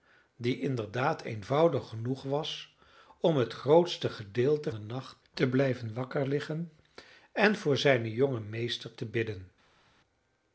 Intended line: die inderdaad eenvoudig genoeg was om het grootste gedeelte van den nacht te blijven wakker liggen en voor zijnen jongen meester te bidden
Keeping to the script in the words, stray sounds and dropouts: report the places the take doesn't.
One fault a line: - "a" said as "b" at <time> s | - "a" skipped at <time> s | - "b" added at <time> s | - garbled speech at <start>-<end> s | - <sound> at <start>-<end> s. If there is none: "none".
- "van" skipped at 4.7 s